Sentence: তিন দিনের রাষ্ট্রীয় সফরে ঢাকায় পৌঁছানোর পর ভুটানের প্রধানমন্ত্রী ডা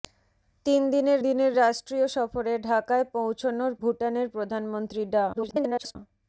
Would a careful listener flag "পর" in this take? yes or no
yes